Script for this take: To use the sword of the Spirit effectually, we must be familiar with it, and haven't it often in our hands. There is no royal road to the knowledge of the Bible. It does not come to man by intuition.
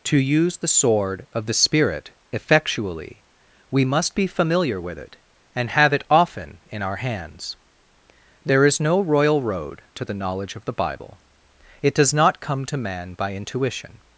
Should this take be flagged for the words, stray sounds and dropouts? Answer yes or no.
yes